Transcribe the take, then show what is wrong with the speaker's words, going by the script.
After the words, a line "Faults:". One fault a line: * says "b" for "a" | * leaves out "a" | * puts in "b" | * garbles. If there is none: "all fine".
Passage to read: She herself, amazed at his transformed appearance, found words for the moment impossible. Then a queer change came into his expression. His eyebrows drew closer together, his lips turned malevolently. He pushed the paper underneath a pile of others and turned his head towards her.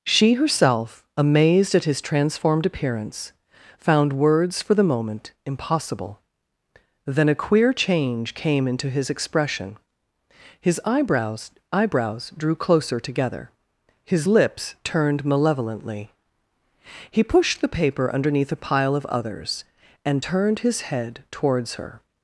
She herself, amazed at his transformed appearance, found words for the moment impossible. Then a queer change came into his expression. His eyebrows eyebrows drew closer together, his lips turned malevolently. He pushed the paper underneath a pile of others and turned his head towards her.
Faults:
* puts in "eyebrows"